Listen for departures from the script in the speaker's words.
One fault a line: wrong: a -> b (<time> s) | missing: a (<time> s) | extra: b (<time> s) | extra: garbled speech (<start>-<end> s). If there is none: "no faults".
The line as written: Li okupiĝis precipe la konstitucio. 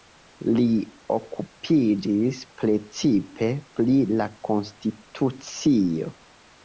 extra: pri (3.8 s)